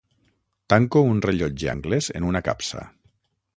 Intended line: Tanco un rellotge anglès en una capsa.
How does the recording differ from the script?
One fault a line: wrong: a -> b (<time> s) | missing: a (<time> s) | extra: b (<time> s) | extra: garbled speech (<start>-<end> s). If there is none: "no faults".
no faults